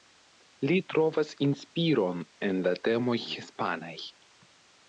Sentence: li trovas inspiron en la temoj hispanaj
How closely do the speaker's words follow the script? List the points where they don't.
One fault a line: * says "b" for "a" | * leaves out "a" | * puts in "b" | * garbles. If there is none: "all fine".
all fine